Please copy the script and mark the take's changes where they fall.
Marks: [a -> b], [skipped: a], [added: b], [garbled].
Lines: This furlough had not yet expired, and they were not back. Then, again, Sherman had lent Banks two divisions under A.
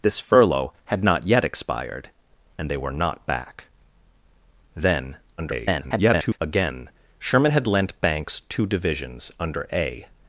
This furlough had not yet expired, and they were not back. Then, [garbled] again, Sherman had lent Banks two divisions under A.